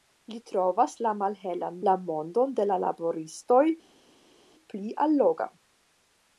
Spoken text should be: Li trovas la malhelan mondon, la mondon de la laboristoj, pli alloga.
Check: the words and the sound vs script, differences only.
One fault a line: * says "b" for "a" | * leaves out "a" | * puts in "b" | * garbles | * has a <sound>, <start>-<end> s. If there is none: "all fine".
* leaves out "mondon"